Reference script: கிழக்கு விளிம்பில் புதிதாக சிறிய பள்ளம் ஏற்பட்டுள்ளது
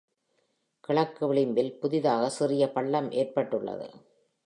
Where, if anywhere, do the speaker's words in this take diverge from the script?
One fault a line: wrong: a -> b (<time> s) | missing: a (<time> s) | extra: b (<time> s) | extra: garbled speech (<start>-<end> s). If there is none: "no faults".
no faults